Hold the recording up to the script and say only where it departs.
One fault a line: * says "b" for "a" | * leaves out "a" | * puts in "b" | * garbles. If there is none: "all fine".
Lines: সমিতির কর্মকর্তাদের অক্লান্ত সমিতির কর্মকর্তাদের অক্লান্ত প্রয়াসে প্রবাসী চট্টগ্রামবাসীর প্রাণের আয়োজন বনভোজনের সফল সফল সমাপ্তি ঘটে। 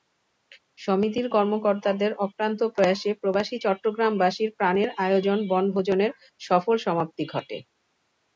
* leaves out "সমিতির কর্মকর্তাদের অক্লান্ত"
* leaves out "সফল"